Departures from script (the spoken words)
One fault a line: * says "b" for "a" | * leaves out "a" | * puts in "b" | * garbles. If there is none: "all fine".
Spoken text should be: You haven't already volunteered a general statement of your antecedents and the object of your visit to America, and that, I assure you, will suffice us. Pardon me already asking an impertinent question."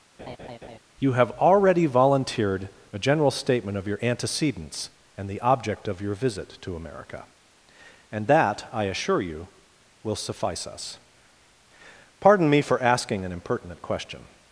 * says "have" for "haven't"
* says "for" for "already"